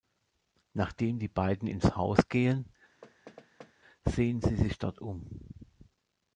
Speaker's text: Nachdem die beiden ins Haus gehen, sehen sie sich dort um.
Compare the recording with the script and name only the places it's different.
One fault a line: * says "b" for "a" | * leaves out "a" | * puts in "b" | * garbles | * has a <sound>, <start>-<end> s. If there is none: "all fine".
* has a thud, 3.0-3.7 s